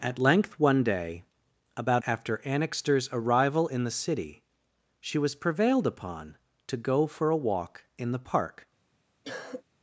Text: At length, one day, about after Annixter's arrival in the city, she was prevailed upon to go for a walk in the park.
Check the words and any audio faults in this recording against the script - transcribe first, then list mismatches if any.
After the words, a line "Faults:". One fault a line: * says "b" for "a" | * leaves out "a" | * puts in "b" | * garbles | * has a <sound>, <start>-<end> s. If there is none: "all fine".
At length, one day, about after Annixter's arrival in the city, she was prevailed upon to go for a walk in the park.
Faults:
* has a cough, 9.2-9.6 s